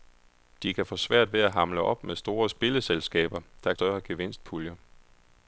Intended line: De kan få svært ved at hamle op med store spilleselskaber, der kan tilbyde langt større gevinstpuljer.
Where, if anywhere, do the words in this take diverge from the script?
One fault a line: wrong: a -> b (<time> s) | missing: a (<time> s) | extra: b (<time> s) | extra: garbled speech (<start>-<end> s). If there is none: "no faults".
missing: kan tilbyde langt (3.7 s)